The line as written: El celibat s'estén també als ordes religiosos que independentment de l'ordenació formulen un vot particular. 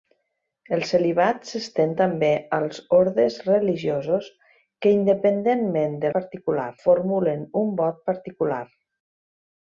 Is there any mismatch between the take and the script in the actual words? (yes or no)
yes